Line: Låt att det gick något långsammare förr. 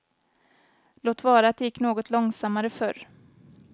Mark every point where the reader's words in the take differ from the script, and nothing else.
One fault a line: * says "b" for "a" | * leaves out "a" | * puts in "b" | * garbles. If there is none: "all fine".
* puts in "vara"